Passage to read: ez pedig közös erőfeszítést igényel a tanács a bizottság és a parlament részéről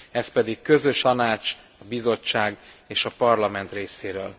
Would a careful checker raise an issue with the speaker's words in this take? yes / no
yes